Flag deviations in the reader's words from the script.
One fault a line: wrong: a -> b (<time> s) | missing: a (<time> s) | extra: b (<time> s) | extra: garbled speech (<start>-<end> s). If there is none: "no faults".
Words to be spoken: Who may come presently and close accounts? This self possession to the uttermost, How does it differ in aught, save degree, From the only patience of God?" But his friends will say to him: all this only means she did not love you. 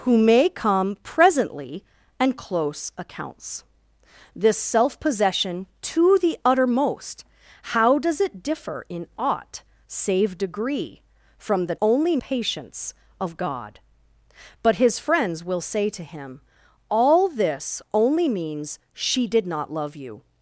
no faults